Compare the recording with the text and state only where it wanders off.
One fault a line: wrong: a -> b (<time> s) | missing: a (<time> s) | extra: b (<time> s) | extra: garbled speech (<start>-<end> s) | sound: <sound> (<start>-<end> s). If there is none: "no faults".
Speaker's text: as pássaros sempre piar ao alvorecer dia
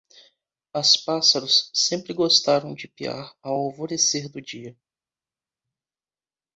extra: gostaram de (2.1 s)
extra: do (4.3 s)